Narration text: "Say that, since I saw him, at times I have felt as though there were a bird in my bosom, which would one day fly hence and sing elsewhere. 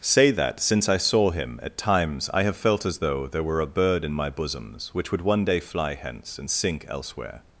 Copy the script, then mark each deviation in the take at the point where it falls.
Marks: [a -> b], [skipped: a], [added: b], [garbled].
"Say that, since I saw him, at times I have felt as though there were a bird in my [bosom, -> bosoms] which would one day fly hence and [sing -> sink] elsewhere.